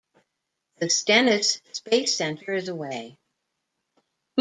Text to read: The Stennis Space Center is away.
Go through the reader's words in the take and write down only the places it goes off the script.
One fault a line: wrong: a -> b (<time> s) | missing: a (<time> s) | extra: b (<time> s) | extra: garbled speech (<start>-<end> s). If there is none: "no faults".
no faults